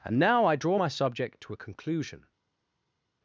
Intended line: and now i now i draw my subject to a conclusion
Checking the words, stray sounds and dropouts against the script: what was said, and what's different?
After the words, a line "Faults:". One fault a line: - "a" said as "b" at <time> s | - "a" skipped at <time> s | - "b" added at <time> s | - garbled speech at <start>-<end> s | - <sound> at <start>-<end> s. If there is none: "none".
and now i draw my subject to a conclusion
Faults:
- "now i" skipped at 0.6 s